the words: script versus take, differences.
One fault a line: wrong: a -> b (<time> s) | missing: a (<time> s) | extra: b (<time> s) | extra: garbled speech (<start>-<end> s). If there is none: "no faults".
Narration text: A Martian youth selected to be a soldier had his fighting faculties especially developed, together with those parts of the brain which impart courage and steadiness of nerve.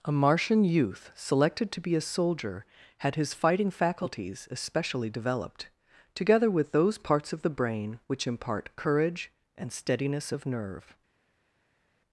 no faults